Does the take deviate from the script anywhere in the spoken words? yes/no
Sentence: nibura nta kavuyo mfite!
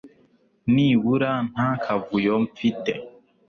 no